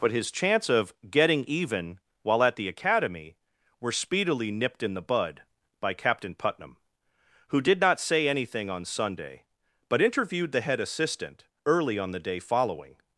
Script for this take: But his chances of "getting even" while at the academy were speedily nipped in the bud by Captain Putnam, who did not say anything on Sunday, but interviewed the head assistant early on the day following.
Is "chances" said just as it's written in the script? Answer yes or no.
no